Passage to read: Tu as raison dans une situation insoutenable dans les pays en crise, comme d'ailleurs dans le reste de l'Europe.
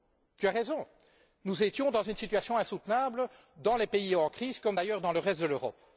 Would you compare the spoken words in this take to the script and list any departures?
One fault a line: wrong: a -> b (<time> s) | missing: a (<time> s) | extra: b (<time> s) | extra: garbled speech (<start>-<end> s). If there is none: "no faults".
extra: nous étions (1.4 s)